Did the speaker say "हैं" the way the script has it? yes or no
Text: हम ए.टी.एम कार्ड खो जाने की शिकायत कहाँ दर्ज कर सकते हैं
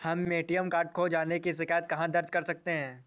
yes